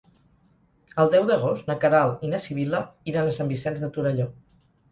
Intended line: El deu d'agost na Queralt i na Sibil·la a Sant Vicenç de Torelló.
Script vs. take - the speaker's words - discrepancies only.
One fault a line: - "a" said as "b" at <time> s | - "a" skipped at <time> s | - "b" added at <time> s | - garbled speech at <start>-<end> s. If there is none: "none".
- "iran" added at 3.1 s